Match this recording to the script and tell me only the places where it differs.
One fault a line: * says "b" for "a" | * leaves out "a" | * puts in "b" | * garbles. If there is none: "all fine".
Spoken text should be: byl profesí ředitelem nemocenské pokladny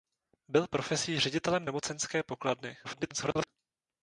* garbles